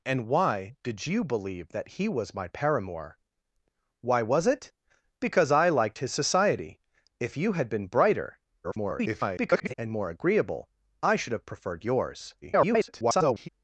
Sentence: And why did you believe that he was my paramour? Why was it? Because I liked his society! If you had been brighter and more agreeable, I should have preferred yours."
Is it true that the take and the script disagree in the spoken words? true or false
true